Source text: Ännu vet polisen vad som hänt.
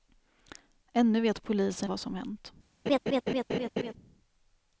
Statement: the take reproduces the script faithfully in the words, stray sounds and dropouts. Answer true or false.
false